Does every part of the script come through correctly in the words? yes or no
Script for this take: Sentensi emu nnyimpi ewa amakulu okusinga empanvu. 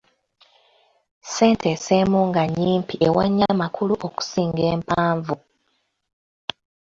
no